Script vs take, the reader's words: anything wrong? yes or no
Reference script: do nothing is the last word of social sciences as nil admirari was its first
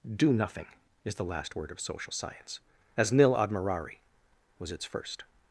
yes